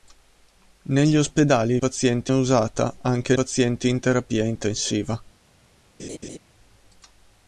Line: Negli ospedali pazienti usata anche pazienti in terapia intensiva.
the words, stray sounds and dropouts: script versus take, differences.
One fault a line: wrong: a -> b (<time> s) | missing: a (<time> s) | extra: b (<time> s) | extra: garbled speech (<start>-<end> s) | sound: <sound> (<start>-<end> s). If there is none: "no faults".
sound: laugh (6.0-6.4 s)